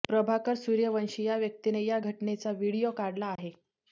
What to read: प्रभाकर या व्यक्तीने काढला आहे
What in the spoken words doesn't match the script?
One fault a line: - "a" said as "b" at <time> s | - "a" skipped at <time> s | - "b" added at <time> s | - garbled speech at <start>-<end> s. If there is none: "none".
- "सूर्यवंशी" added at 0.6 s
- "या घटनेचा व्हिडीओ" added at 1.8 s